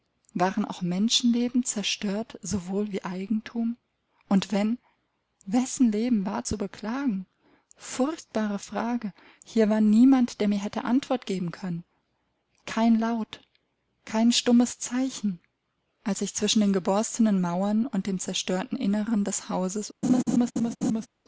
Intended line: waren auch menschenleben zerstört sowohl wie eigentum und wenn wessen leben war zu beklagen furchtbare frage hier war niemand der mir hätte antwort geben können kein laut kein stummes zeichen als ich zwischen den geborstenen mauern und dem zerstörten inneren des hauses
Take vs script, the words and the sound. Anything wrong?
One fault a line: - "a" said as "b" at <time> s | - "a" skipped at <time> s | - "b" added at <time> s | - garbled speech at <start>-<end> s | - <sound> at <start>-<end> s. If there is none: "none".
- laugh at 20.0-21.1 s